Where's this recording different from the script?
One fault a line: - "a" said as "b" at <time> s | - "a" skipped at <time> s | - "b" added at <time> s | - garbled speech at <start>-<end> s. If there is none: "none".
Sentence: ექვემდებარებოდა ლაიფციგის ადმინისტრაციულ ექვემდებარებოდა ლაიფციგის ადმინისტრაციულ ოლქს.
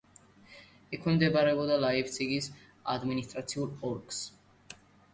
- "ექვემდებარებოდა ლაიფციგის ადმინისტრაციულ" skipped at 3.7 s